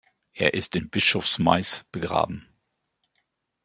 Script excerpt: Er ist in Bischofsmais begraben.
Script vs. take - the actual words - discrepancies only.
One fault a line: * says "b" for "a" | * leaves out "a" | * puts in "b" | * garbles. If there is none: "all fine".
all fine